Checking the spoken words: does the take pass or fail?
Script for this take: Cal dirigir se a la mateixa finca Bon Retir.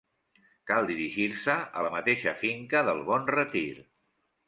fail